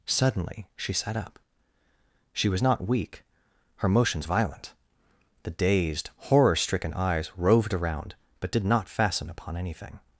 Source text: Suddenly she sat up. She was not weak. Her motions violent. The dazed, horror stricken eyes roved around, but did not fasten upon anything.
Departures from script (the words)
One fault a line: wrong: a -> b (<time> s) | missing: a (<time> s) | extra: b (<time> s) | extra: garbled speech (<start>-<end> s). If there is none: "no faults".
no faults